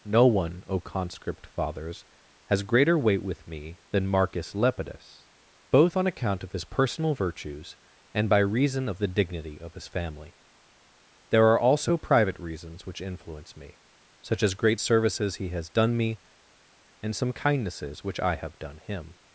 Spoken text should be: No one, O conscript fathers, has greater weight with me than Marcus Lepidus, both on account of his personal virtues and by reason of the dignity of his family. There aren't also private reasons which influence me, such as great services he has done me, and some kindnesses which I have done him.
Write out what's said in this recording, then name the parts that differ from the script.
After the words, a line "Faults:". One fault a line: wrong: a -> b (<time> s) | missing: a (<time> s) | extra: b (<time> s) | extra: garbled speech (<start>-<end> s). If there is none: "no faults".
No one, O conscript fathers, has greater weight with me than Marcus Lepidus, both on account of his personal virtues and by reason of the dignity of his family. There are also private reasons which influence me, such as great services he has done me, and some kindnesses which I have done him.
Faults:
wrong: aren't -> are (11.5 s)